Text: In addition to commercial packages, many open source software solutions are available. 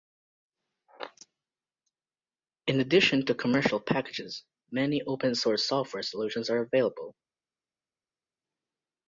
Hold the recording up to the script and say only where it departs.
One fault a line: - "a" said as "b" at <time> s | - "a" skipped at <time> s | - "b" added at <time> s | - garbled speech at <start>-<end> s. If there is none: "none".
none